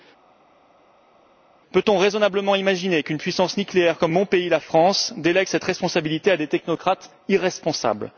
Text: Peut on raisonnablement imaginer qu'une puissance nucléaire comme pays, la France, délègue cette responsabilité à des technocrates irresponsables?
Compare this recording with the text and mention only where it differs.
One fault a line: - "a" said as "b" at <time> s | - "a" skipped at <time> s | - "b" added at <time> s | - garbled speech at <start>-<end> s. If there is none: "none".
- "mon" added at 4.1 s